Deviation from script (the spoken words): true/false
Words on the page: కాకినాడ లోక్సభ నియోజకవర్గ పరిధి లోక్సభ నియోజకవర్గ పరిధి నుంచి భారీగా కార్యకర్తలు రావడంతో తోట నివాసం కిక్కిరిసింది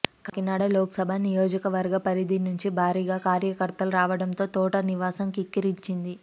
true